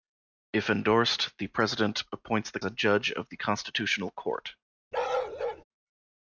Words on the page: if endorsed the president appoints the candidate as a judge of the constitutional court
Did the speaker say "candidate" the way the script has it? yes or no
no